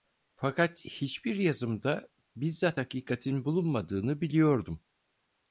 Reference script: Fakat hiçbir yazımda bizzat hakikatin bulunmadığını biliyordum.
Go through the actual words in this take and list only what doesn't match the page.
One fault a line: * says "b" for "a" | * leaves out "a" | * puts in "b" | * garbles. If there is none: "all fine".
all fine